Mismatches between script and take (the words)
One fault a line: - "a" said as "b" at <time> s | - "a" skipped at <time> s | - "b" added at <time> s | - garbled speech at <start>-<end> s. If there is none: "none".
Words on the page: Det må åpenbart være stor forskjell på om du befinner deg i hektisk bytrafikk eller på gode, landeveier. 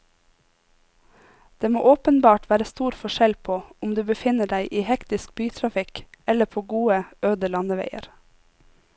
- "øde" added at 7.3 s